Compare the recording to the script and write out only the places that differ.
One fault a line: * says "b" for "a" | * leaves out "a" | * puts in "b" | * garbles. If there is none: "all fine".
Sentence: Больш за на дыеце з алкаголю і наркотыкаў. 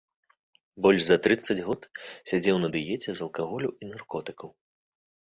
* puts in "трыццаць год сядзеў"